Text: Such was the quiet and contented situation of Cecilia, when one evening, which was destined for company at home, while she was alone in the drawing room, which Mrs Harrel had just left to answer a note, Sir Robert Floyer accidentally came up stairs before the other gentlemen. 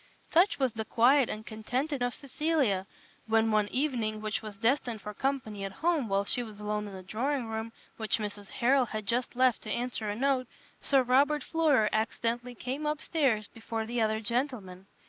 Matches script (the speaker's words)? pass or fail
fail